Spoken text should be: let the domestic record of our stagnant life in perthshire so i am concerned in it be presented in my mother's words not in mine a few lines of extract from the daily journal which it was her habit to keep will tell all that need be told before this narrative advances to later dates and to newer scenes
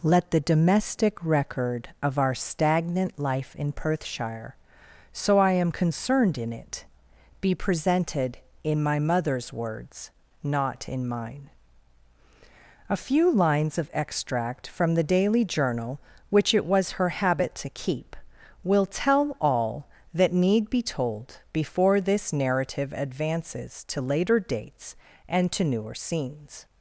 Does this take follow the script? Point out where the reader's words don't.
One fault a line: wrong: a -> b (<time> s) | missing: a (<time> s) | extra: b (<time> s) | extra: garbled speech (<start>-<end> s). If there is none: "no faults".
no faults